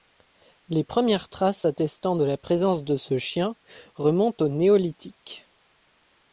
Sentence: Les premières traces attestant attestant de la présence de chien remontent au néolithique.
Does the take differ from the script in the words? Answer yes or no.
yes